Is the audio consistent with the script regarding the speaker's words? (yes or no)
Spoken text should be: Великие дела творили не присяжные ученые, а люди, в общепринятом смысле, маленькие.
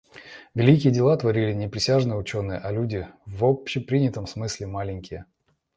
yes